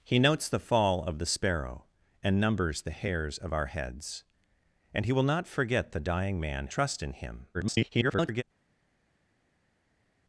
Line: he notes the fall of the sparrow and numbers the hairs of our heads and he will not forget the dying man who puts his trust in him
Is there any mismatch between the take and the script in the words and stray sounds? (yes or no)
yes